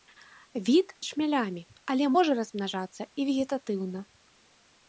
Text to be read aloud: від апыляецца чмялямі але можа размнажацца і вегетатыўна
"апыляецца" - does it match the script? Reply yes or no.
no